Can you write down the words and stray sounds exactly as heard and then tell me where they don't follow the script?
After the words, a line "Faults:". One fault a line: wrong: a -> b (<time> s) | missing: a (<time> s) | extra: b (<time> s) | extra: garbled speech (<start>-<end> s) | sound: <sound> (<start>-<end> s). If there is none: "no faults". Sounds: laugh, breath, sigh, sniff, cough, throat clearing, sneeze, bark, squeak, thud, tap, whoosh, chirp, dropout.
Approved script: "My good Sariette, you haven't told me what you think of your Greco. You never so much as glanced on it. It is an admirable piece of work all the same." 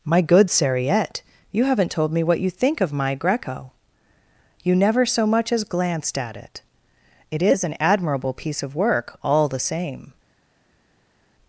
"My good Sariette, you haven't told me what you think of my Greco. You never so much as glanced at it. It is an admirable piece of work all the same."
Faults:
wrong: your -> my (2.9 s)
wrong: on -> at (6.2 s)